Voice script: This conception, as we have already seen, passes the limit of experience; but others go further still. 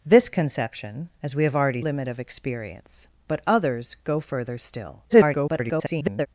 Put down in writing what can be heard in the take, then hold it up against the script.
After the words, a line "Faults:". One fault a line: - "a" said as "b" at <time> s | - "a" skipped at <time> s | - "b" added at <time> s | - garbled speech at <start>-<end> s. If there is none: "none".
This conception, as we have already limit of experience; but others go further still. [garbled]
Faults:
- "seen passes the" skipped at 1.8 s
- garbled speech at 5.1-6.3 s